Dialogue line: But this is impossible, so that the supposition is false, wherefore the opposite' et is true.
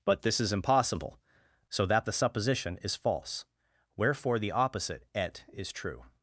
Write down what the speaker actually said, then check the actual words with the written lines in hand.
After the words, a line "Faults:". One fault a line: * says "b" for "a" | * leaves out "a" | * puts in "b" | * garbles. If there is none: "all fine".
But this is impossible, so that the supposition is false, wherefore the opposite' et is true.
Faults:
all fine